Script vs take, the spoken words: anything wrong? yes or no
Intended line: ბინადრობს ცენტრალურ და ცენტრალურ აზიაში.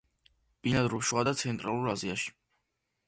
yes